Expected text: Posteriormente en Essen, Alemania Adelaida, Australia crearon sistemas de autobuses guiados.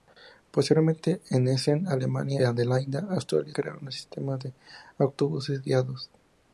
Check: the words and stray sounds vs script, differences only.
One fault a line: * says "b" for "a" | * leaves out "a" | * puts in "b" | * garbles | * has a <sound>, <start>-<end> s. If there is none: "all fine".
all fine